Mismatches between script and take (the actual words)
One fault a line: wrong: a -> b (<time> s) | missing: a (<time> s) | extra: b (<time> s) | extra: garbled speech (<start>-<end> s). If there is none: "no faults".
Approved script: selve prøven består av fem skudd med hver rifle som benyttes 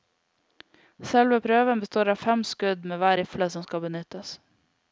extra: skal (3.7 s)